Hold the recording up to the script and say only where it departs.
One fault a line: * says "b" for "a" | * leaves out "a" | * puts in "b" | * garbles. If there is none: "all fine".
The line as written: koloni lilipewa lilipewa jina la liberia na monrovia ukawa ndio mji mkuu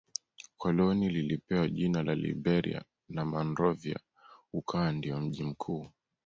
* leaves out "lilipewa"